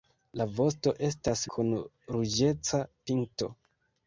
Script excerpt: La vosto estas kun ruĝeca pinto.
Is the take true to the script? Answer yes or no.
yes